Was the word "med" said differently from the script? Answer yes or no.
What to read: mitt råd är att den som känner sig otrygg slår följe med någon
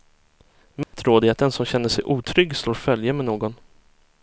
no